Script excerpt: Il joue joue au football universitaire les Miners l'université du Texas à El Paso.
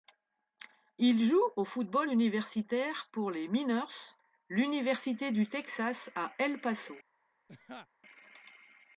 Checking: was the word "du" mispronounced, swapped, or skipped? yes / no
no